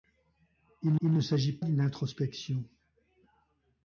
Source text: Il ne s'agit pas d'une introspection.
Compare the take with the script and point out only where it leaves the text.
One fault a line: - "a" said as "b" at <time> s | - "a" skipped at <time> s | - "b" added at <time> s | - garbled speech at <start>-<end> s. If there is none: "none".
- "il" added at 1.0 s
- "pas" skipped at 1.6 s